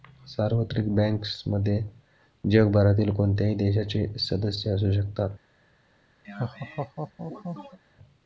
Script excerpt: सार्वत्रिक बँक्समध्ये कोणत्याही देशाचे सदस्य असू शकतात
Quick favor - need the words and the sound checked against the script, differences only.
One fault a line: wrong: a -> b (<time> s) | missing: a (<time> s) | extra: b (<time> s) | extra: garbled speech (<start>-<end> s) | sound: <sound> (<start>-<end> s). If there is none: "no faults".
extra: जगभरातील (2.4 s)
sound: laugh (6.2-7.8 s)